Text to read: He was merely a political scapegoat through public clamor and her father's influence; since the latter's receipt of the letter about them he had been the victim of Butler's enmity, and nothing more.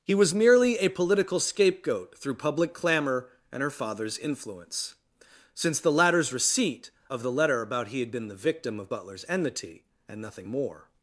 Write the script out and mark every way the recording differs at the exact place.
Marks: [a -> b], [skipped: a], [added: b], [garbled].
He was merely a political scapegoat through public clamor and her father's influence; since the latter's receipt of the letter about [skipped: them] he had been the victim of Butler's enmity, and nothing more.